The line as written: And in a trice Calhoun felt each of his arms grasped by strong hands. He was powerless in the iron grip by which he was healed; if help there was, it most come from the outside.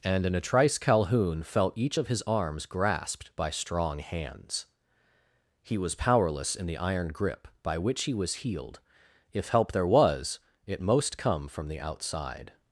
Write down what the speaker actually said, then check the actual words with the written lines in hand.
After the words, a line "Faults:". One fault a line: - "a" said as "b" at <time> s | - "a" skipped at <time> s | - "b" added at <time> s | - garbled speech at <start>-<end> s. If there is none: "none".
And in a trice Calhoun felt each of his arms grasped by strong hands. He was powerless in the iron grip by which he was healed; if help there was, it most come from the outside.
Faults:
none